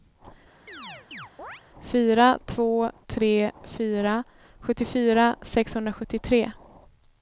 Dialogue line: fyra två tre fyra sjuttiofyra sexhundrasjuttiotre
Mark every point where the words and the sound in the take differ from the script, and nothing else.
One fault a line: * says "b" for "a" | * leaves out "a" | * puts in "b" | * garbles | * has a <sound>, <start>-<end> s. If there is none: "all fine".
* has a chirp, 0.7-1.6 s